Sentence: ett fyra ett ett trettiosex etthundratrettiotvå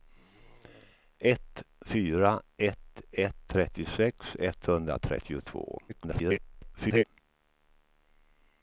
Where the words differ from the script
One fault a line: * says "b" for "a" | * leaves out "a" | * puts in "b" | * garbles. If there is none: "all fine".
* garbles